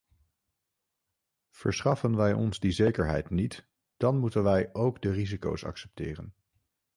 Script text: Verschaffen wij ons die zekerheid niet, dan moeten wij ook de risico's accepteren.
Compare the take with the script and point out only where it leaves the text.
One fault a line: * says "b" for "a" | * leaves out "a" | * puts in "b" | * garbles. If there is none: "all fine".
all fine